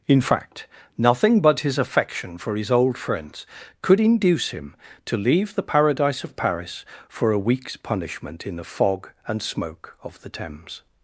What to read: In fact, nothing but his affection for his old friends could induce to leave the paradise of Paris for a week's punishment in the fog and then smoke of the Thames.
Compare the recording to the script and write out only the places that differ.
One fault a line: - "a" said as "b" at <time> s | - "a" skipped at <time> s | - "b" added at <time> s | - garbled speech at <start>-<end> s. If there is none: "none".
- "him" added at 4.5 s
- "then" skipped at 9.4 s